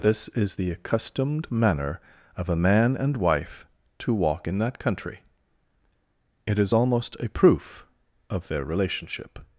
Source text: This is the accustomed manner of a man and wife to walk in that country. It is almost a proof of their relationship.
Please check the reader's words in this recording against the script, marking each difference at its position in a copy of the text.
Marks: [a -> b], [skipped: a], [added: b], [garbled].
This is the accustomed manner of a man and wife to walk in that country. It is almost a proof of their relationship.